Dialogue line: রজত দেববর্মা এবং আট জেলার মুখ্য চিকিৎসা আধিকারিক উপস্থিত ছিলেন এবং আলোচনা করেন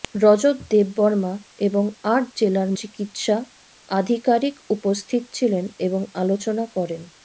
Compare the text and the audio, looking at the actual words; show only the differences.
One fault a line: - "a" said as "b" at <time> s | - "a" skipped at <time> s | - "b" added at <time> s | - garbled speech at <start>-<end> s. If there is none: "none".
- "মুখ্য" skipped at 2.7 s